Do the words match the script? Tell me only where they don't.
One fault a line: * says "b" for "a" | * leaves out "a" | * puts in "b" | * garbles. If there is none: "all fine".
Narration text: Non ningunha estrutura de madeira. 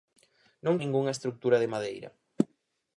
all fine